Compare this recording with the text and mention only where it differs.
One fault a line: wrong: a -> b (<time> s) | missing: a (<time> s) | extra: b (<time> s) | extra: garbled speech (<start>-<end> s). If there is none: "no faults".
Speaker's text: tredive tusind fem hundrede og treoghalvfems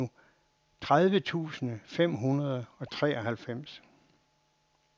no faults